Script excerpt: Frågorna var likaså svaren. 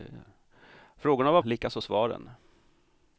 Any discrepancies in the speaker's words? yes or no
no